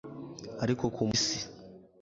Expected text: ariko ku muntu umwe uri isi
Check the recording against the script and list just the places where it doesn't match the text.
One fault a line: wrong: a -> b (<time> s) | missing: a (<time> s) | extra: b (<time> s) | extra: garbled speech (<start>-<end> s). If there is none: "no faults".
missing: muntu umwe uri (1.0 s)